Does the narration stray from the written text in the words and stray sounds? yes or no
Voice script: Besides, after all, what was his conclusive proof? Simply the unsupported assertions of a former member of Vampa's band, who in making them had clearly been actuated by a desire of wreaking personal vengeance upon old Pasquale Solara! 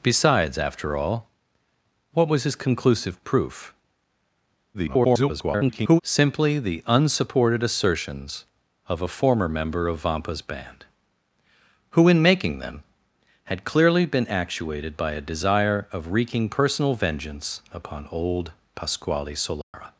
yes